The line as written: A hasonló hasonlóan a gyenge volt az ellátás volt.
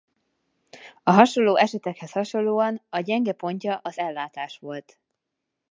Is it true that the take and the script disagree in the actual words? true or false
true